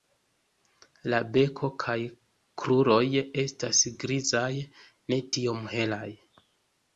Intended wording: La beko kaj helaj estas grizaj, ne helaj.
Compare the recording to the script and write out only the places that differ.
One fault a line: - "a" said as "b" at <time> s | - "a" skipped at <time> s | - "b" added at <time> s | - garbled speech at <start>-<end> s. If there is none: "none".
- "helaj" said as "kruroj" at 2.6 s
- "tiom" added at 5.4 s